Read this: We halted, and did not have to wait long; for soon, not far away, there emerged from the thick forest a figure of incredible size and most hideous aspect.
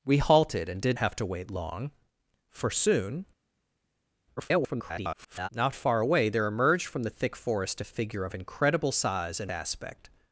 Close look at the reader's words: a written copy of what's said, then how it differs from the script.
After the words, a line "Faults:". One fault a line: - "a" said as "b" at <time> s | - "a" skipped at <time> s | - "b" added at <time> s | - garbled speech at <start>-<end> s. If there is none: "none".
We halted, and did have to wait long; for soon, [garbled] not far away, there emerged from the thick forest a figure of incredible size and aspect.
Faults:
- "not" skipped at 1.0 s
- garbled speech at 4.4-5.5 s
- "most hideous" skipped at 9.5 s